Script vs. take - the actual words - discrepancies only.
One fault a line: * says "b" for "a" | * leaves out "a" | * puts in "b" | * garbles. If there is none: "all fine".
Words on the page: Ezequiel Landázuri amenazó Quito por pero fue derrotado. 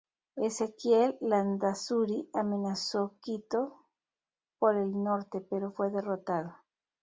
* puts in "el norte"